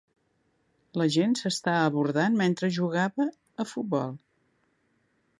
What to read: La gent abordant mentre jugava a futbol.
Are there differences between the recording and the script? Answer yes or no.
yes